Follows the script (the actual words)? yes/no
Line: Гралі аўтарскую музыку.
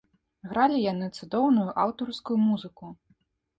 no